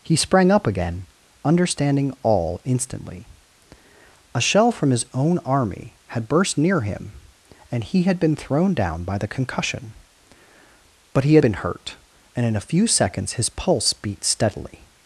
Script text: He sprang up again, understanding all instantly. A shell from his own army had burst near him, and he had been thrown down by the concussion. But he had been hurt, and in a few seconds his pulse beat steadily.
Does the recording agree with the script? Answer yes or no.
yes